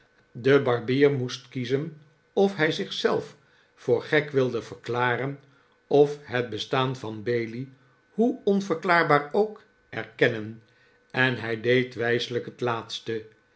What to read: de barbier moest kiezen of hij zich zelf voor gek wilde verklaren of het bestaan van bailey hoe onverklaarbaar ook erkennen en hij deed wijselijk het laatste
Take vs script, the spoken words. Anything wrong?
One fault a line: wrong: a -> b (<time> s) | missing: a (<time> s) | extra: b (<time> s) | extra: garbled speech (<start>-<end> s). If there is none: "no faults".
no faults